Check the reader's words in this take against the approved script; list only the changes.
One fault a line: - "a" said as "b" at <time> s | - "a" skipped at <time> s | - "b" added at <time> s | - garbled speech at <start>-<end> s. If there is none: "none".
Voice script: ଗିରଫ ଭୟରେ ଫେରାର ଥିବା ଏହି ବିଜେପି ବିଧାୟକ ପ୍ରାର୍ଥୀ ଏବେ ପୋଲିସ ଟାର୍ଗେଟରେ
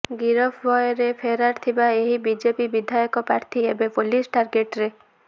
none